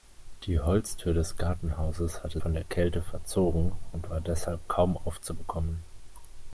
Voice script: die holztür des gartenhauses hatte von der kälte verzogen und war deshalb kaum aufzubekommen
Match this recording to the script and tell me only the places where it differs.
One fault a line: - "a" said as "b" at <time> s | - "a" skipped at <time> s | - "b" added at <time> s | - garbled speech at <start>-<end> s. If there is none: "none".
none